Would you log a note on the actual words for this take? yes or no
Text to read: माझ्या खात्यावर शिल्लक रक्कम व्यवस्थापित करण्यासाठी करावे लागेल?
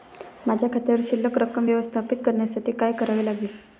yes